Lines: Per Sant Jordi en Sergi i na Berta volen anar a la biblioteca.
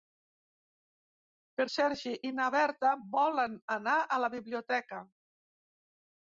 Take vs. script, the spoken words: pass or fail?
fail